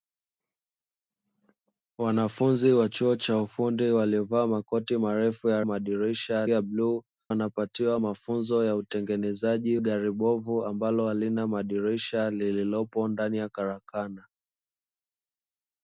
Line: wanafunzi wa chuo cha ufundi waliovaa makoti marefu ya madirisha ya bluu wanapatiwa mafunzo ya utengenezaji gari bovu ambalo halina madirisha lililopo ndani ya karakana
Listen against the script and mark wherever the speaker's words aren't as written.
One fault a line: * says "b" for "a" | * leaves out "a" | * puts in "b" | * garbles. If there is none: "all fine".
all fine